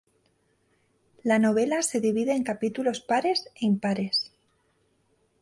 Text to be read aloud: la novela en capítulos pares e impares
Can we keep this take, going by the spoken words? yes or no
no